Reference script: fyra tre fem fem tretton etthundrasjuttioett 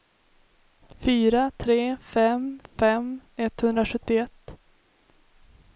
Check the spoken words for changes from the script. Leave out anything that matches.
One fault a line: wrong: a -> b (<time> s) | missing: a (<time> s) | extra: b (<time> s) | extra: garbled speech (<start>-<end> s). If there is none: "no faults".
missing: tretton (3.2 s)